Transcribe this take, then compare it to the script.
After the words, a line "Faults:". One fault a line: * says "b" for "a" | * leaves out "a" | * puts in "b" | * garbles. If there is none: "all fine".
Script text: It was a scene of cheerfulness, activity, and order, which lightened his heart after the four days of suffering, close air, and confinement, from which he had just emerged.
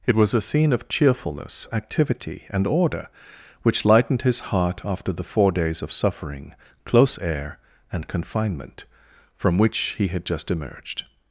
It was a scene of cheerfulness, activity, and order, which lightened his heart after the four days of suffering, close air, and confinement, from which he had just emerged.
Faults:
all fine